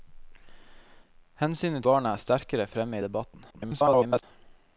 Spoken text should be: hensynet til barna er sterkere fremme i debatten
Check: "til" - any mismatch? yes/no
yes